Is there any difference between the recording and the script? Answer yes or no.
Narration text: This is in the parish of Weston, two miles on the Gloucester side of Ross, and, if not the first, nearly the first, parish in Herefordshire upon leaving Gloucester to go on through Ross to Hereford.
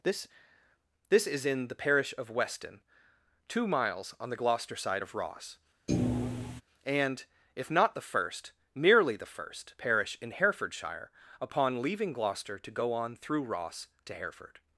yes